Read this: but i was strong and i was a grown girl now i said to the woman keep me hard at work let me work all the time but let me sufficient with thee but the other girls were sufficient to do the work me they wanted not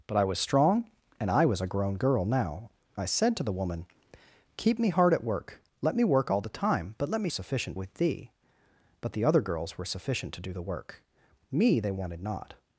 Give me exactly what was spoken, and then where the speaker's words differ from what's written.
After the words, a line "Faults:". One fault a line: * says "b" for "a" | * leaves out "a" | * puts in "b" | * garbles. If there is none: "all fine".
but i was strong and i was a grown girl now i said to the woman keep me hard at work let me work all the time but let me sufficient with thee but the other girls were sufficient to do the work me they wanted not
Faults:
all fine